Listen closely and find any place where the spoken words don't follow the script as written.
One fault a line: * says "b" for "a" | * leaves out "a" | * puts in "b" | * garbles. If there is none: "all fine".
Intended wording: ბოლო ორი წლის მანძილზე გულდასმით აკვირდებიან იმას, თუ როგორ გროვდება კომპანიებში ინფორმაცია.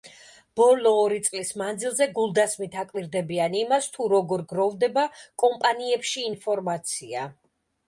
all fine